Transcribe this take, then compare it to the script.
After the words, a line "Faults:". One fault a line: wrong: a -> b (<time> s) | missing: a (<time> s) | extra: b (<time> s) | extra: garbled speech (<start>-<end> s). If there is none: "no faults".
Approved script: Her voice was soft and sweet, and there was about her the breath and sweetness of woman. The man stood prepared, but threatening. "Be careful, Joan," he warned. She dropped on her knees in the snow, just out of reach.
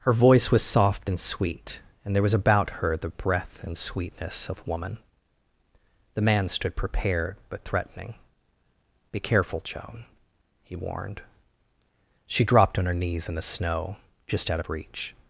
Her voice was soft and sweet, and there was about her the breath and sweetness of woman. The man stood prepared, but threatening. "Be careful, Joan," he warned. She dropped on her knees in the snow, just out of reach.
Faults:
no faults